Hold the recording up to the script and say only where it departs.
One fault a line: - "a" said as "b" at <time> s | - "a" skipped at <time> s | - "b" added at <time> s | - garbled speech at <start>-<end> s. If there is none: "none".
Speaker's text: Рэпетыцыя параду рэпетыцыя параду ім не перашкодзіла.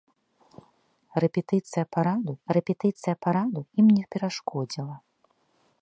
none